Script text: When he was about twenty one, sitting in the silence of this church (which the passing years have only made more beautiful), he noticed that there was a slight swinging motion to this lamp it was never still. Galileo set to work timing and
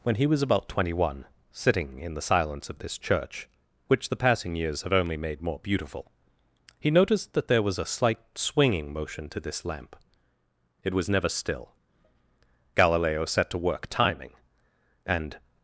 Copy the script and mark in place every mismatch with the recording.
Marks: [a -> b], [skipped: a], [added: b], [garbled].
When he was about twenty one, sitting in the silence of this church (which the passing years have only made more beautiful), he noticed that there was a slight swinging motion to this lamp it was never still. Galileo set to work timing and